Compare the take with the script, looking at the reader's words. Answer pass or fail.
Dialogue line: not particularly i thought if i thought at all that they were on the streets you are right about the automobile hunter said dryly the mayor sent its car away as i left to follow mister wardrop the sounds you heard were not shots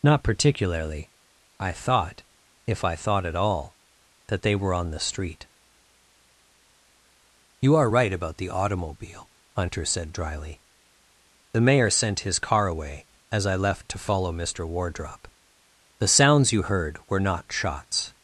fail